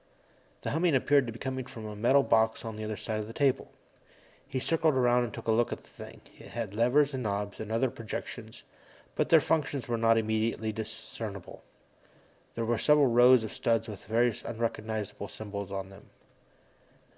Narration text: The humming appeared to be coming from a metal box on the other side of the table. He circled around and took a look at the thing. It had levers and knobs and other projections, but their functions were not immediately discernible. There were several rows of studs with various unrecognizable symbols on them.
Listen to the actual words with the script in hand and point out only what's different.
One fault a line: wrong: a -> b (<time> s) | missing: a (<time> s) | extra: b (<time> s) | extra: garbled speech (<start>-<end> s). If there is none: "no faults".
no faults